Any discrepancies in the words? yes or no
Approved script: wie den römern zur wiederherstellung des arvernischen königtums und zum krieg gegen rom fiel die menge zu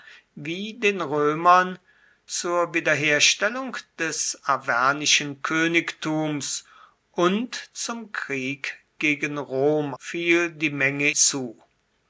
no